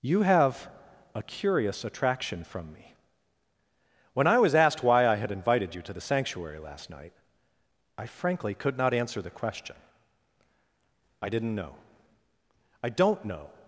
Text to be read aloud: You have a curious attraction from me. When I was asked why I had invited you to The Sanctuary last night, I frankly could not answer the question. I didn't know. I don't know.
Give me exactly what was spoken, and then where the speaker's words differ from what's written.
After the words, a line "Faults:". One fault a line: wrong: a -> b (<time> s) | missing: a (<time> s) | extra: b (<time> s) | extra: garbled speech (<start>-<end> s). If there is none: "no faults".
You have a curious attraction from me. When I was asked why I had invited you to The Sanctuary last night, I frankly could not answer the question. I didn't know. I don't know.
Faults:
no faults